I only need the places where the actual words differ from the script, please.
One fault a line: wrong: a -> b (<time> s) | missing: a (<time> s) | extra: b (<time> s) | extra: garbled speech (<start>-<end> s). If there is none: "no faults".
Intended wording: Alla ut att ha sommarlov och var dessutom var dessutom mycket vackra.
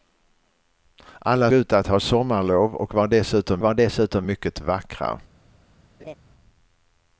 no faults